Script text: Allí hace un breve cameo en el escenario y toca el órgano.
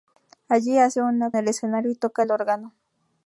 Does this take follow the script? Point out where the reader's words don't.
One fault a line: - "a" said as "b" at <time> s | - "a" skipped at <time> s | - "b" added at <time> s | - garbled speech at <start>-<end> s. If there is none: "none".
- "breve cameo en" skipped at 1.2 s